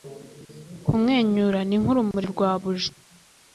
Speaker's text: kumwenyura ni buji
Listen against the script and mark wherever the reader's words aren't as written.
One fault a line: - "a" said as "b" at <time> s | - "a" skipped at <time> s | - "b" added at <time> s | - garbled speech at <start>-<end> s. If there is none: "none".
- "nk'urumuri rwa" added at 1.8 s